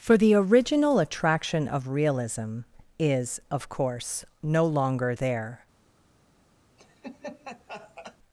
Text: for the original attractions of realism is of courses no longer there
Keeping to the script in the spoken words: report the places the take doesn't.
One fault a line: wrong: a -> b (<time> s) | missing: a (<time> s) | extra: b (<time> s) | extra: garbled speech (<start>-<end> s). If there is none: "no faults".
wrong: attractions -> attraction (1.0 s)
wrong: courses -> course (3.7 s)